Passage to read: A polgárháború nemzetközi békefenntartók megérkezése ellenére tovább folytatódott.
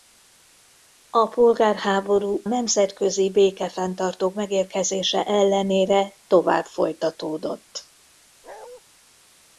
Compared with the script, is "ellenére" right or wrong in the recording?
right